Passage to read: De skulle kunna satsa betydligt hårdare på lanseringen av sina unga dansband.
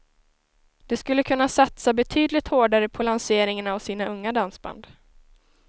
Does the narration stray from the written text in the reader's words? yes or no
no